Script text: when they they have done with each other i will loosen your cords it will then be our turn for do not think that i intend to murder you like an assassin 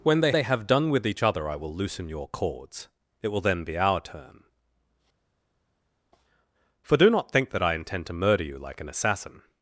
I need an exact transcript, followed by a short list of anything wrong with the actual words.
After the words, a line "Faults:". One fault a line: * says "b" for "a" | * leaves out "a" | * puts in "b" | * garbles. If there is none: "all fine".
when they they have done with each other i will loosen your cords it will then be our turn for do not think that i intend to murder you like an assassin
Faults:
all fine